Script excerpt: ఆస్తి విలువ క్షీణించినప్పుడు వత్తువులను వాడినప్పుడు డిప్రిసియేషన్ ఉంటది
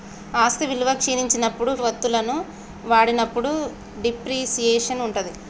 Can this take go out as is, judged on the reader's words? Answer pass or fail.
pass